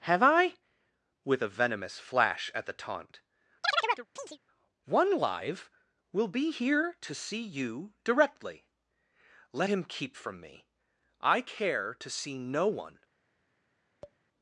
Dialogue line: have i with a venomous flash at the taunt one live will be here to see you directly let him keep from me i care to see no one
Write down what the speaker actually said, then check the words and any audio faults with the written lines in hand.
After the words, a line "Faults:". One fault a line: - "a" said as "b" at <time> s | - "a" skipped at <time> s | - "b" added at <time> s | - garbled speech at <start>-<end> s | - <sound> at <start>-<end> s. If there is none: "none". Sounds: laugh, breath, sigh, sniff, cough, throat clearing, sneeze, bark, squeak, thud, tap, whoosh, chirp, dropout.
have i with a venomous flash at the taunt one live will be here to see you directly let him keep from me i care to see no one
Faults:
- chirp at 3.6-4.4 s
- tap at 14.0-14.2 s